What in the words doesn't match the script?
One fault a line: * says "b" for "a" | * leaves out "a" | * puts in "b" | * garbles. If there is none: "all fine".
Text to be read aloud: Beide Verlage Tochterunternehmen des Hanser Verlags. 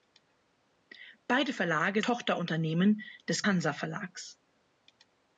all fine